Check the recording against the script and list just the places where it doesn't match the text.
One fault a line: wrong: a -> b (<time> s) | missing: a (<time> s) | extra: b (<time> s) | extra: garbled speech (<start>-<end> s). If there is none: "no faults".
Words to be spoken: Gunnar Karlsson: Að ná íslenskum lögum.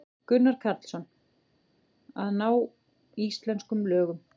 no faults